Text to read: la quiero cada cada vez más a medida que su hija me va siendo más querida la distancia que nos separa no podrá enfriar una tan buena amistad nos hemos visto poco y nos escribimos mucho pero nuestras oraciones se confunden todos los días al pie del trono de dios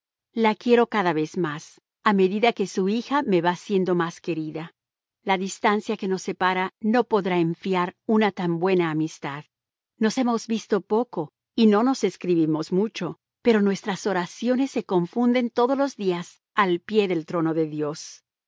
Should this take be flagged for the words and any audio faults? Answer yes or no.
yes